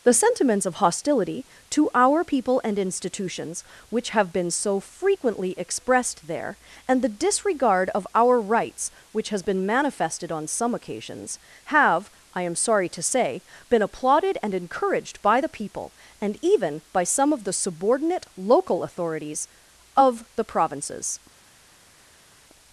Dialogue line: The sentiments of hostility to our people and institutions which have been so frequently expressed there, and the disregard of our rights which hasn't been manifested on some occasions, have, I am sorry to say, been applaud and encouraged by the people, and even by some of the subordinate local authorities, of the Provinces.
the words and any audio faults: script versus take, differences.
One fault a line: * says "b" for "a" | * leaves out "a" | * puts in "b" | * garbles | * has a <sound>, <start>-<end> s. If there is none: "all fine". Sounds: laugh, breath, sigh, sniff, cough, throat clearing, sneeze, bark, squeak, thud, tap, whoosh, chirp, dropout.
* says "has" for "hasn't"
* says "applauded" for "applaud"